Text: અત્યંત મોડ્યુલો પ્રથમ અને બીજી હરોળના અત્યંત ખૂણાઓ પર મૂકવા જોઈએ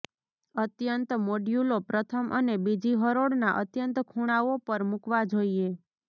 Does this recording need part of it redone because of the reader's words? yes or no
no